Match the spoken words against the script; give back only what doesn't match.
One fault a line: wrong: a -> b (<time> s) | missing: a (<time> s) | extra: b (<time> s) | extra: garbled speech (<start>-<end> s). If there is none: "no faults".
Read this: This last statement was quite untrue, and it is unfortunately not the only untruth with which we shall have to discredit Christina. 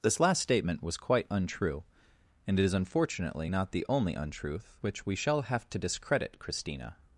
missing: with (4.8 s)